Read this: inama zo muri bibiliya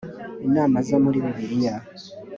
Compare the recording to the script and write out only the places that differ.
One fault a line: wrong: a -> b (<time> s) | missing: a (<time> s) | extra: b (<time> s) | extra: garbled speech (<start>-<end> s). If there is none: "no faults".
no faults